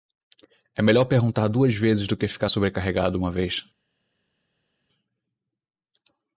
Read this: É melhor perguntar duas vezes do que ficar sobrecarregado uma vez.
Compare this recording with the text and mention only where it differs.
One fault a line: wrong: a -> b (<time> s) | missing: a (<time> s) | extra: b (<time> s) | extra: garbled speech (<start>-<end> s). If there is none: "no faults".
no faults